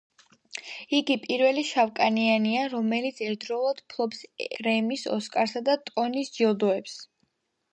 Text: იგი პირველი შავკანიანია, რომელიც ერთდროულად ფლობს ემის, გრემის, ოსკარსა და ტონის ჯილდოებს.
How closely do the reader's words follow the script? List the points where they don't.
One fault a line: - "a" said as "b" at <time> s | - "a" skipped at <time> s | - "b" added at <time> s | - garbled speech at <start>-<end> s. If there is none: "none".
- "ემის" skipped at 4.2 s